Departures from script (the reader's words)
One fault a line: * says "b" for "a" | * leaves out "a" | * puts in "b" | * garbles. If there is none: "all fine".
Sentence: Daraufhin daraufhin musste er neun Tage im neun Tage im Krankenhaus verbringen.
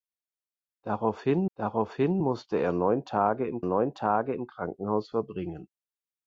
all fine